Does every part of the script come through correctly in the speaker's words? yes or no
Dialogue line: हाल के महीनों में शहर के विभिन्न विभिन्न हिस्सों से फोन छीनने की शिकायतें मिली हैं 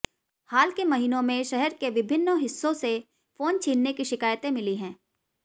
no